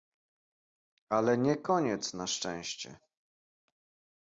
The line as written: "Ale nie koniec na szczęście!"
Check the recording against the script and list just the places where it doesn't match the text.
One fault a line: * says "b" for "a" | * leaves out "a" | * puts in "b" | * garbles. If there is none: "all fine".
all fine